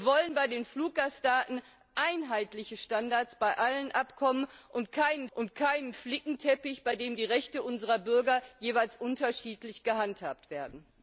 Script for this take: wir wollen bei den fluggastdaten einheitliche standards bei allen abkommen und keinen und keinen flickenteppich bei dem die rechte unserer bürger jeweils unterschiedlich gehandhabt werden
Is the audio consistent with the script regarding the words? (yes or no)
yes